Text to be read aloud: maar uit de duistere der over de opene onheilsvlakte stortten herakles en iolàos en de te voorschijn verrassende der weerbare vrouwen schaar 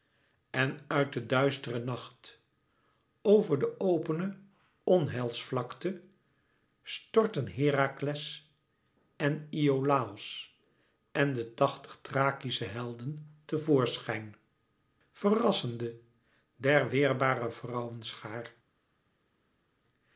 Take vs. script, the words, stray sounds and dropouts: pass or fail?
fail